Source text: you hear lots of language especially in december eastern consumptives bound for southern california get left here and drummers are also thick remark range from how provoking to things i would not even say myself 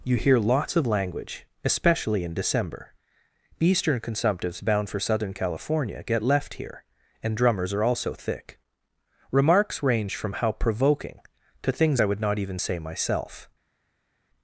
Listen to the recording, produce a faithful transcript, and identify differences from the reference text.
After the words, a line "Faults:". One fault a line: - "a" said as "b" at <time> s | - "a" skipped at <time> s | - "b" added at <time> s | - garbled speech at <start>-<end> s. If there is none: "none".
you hear lots of language especially in december eastern consumptives bound for southern california get left here and drummers are also thick remarks range from how provoking to things i would not even say myself
Faults:
- "remark" said as "remarks" at 9.3 s